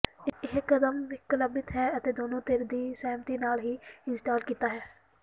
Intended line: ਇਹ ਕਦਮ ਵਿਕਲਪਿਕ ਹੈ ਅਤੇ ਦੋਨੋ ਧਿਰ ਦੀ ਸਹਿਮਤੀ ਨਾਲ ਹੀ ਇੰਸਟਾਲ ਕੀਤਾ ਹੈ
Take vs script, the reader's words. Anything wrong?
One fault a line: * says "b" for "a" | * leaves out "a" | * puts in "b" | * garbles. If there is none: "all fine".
all fine